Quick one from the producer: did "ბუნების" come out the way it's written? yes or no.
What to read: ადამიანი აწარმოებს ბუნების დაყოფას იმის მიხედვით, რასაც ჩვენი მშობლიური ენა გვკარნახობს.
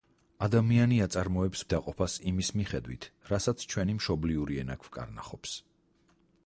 no